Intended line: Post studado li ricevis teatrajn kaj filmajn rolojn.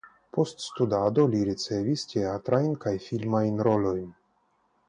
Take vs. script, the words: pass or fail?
pass